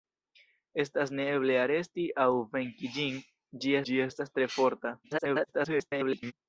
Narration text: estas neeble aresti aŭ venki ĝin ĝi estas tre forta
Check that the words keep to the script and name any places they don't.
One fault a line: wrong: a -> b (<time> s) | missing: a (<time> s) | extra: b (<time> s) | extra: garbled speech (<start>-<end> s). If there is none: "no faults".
extra: ĝi (3.9 s)
extra: garbled speech (5.0-6.3 s)